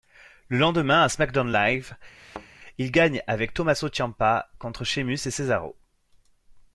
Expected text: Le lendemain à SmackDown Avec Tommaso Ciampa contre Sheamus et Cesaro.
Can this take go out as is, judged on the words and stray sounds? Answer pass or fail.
fail